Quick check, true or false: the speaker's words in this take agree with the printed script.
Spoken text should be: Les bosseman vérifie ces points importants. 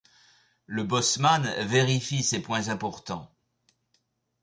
false